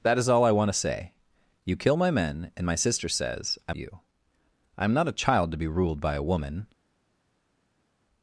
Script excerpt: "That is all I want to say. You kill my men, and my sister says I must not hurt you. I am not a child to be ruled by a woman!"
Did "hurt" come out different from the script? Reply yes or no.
yes